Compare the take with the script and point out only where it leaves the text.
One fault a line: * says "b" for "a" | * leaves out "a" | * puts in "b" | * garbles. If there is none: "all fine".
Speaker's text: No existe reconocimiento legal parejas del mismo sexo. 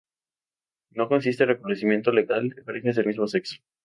all fine